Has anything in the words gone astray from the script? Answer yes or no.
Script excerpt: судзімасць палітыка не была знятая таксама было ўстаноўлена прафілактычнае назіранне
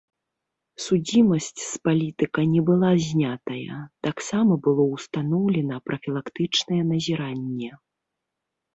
yes